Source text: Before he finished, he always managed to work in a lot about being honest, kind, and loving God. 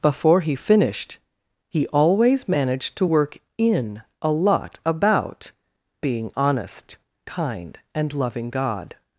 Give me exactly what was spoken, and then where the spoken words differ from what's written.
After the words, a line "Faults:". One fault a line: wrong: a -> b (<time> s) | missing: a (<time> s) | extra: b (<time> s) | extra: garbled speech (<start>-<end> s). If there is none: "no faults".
Before he finished, he always managed to work in a lot about being honest, kind, and loving God.
Faults:
no faults